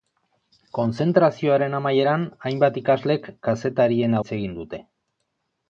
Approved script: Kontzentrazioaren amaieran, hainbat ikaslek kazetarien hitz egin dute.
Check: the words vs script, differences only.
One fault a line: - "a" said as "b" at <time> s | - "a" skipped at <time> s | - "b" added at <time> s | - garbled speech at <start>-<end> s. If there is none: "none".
none